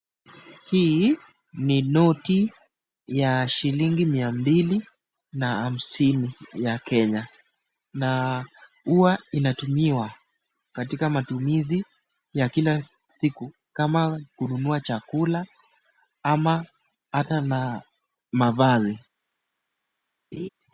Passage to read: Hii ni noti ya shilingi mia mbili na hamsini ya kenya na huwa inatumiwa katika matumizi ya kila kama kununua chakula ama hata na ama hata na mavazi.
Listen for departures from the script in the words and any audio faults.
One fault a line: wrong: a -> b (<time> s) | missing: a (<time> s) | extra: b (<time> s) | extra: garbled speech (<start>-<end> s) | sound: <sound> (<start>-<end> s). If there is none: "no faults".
extra: siku (13.1 s)
missing: ama hata na (17.8 s)
sound: laugh (20.3-20.5 s)